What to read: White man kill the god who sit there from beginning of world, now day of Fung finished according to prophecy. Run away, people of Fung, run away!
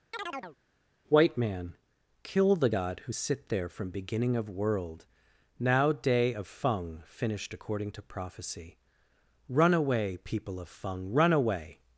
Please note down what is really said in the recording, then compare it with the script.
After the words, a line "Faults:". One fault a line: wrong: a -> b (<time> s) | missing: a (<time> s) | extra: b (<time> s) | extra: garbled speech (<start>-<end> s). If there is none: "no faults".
White man kill the god who sit there from beginning of world, now day of Fung finished according to prophecy. Run away, people of Fung, run away!
Faults:
no faults